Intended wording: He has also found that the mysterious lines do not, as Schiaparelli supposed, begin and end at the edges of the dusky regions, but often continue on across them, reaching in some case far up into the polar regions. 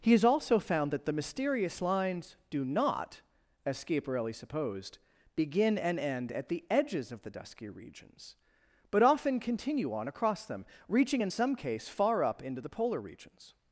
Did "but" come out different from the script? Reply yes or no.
no